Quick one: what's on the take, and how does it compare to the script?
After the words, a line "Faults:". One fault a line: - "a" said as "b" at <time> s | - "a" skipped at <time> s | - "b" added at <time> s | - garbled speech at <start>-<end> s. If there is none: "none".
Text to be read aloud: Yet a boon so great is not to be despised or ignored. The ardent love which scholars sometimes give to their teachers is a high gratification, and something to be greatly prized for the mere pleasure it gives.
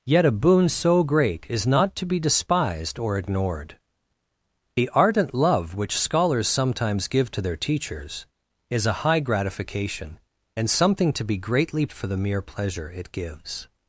Yet a boon so great is not to be despised or ignored. The ardent love which scholars sometimes give to their teachers is a high gratification, and something to be greatly for the mere pleasure it gives.
Faults:
- "prized" skipped at 11.8 s